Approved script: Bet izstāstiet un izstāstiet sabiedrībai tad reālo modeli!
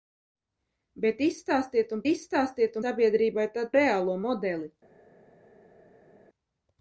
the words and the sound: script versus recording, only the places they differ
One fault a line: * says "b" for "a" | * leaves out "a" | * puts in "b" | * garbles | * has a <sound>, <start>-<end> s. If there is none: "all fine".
all fine